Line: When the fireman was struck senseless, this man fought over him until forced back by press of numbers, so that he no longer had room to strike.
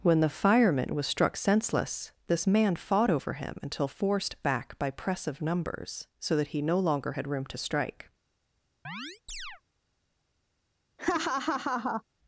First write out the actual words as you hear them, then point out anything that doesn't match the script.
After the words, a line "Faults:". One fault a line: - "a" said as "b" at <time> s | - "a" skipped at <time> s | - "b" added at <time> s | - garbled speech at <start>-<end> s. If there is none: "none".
When the fireman was struck senseless, this man fought over him until forced back by press of numbers, so that he no longer had room to strike.
Faults:
none